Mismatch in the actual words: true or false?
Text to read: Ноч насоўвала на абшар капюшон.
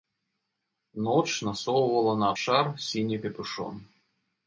true